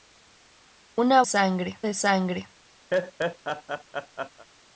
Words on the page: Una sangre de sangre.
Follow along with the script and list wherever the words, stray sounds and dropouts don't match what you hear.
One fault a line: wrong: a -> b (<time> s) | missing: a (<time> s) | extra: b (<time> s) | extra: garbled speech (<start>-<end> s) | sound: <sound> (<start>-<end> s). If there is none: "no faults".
sound: laugh (2.9-4.5 s)